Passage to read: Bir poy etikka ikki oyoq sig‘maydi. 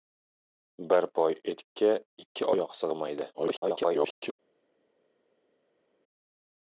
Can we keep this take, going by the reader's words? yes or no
no